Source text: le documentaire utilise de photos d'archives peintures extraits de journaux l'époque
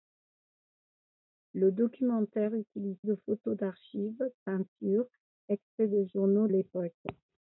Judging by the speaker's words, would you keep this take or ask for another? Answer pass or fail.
pass